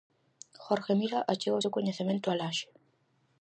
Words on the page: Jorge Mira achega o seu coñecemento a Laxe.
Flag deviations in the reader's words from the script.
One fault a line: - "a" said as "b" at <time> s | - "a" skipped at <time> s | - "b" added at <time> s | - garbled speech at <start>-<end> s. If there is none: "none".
none